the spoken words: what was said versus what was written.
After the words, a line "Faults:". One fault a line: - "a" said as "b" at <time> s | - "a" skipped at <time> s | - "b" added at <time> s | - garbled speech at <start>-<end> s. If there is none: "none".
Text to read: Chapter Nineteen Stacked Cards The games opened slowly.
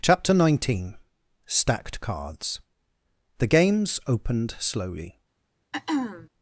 Chapter Nineteen Stacked Cards The games opened slowly.
Faults:
none